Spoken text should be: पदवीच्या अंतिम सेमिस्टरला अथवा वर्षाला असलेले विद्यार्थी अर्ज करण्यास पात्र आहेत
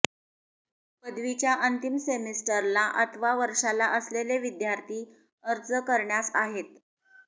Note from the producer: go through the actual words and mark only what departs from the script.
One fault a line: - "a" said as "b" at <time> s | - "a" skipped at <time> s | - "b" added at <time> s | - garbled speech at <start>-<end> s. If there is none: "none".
- "पात्र" skipped at 6.3 s